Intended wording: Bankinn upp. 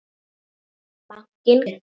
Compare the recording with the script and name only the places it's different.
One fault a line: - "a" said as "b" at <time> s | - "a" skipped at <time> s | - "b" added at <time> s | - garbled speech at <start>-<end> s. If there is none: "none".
none